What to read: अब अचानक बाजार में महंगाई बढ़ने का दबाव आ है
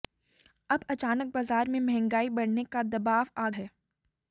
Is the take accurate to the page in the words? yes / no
yes